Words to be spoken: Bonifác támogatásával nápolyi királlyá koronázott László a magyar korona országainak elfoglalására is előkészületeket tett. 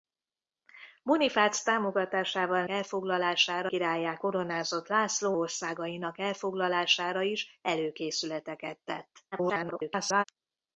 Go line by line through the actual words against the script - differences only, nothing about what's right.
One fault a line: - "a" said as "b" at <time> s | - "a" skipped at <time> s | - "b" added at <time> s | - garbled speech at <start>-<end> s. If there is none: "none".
- "nápolyi" said as "elfoglalására" at 2.7 s
- "a magyar korona" skipped at 5.4 s
- garbled speech at 9.3-10.2 s